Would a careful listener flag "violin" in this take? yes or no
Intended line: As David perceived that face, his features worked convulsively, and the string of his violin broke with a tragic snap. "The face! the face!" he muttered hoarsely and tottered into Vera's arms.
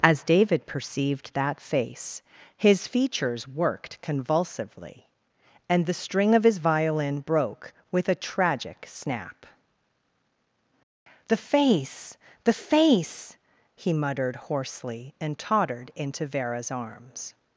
no